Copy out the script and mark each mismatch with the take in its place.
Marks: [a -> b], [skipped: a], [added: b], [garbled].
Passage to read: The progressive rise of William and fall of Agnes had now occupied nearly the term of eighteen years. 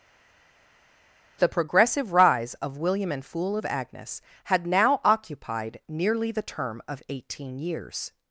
The progressive rise of William and [fall -> fool] of Agnes had now occupied nearly the term of eighteen years.